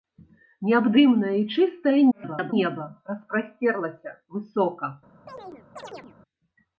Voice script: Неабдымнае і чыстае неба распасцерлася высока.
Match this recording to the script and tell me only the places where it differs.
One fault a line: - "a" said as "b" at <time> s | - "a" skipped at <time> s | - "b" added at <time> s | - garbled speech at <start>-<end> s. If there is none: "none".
- garbled speech at 2.1-2.5 s